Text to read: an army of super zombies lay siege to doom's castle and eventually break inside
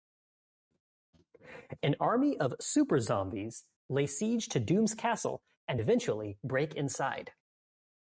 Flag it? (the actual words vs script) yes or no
no